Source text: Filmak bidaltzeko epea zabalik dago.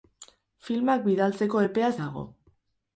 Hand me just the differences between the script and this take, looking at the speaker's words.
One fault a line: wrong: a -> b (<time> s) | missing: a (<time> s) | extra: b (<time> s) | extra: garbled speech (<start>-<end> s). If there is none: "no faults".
missing: zabalik (1.9 s)